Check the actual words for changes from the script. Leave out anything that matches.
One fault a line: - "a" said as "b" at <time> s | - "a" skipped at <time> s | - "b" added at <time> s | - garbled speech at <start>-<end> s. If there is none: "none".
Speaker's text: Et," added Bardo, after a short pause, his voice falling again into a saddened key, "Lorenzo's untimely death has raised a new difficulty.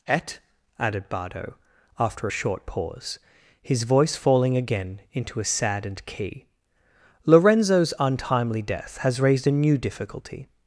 none